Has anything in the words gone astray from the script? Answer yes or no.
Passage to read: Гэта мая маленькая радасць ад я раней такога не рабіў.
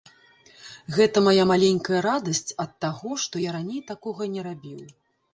yes